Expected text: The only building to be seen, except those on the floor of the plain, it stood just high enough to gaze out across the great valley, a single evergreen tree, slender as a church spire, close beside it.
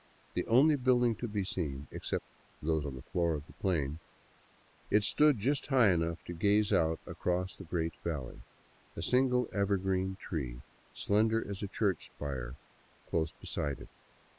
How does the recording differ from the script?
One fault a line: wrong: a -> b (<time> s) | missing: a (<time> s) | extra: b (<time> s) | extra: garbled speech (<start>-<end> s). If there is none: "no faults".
no faults